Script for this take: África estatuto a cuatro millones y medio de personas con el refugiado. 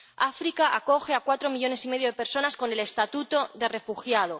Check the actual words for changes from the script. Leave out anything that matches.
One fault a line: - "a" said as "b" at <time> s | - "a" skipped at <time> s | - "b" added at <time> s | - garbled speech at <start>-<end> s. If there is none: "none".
- "estatuto" said as "acoge" at 0.8 s
- "estatuto de" added at 2.8 s